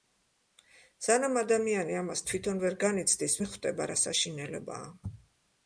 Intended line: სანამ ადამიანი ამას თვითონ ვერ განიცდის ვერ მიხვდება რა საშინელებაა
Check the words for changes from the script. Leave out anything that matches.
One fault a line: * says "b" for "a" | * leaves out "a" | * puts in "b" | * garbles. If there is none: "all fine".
* leaves out "ვერ"